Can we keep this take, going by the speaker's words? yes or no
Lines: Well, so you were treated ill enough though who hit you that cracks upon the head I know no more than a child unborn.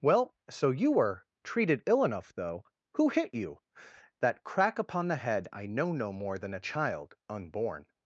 no